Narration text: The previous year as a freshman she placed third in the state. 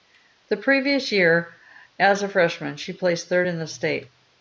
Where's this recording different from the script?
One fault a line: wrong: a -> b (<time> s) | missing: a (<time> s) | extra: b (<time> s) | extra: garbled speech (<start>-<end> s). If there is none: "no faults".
no faults